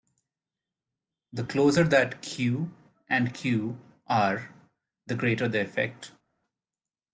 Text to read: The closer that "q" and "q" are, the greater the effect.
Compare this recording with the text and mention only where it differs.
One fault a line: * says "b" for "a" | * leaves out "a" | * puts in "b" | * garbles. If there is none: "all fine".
all fine